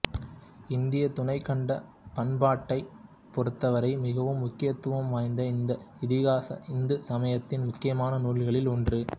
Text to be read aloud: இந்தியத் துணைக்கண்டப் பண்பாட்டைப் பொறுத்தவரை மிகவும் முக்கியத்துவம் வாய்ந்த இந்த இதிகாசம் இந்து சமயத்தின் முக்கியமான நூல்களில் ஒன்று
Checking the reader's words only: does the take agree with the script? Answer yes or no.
yes